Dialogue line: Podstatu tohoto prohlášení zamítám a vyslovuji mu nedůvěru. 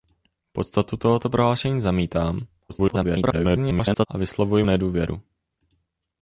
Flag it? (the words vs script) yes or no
yes